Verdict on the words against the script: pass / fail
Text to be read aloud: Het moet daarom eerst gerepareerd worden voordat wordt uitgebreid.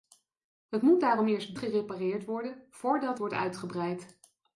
pass